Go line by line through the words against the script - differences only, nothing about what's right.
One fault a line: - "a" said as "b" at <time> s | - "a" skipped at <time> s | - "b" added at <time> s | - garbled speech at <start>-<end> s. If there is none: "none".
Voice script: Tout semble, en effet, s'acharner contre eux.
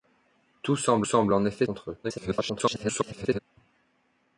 - "semble" added at 1.0 s
- "s'acharner" skipped at 1.7 s
- garbled speech at 2.0-3.4 s